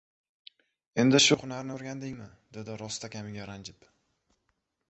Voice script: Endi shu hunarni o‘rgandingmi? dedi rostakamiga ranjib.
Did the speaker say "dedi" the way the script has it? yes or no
yes